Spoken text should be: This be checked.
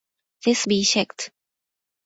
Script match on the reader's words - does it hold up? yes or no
yes